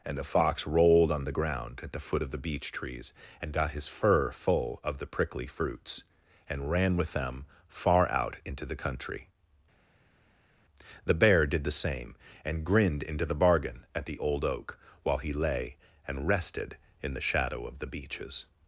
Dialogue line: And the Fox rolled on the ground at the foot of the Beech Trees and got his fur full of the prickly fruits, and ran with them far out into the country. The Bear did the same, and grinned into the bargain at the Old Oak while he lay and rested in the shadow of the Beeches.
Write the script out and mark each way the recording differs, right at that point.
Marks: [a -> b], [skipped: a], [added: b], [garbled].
And the Fox rolled on the ground at the foot of the Beech Trees and got his fur full of the prickly fruits, and ran with them far out into the country. The Bear did the same, and grinned into the bargain at the Old Oak while he lay and rested in the shadow of the Beeches.